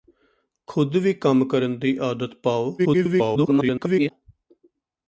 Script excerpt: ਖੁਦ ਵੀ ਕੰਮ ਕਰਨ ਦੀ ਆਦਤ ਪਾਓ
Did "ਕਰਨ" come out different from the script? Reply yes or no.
no